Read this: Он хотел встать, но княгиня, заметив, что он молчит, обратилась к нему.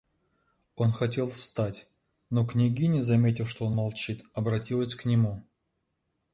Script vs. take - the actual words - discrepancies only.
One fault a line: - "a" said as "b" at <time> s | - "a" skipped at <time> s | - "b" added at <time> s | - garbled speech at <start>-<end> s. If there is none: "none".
none